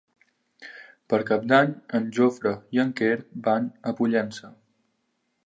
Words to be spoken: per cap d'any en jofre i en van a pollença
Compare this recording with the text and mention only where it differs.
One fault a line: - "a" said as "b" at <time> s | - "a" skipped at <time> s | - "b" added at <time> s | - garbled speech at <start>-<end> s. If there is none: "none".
- "quer" added at 3.0 s